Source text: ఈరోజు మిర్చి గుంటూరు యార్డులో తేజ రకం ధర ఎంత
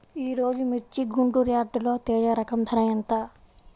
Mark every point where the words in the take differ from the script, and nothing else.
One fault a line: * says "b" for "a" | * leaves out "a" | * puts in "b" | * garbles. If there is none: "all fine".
all fine